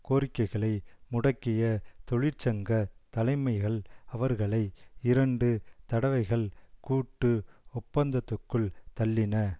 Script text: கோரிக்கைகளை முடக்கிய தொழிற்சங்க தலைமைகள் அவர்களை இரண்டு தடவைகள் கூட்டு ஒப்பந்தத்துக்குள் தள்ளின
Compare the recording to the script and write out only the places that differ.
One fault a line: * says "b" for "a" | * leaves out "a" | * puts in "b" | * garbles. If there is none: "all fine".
all fine